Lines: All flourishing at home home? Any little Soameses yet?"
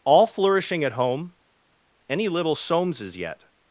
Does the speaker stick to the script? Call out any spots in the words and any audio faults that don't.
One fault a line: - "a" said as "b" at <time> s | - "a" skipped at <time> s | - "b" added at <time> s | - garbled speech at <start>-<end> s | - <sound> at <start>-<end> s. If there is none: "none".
- "home" skipped at 1.3 s